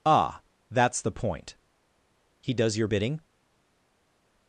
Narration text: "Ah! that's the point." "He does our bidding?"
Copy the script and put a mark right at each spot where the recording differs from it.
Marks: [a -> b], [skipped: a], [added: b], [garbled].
"Ah! that's the point." "He does [our -> your] bidding?"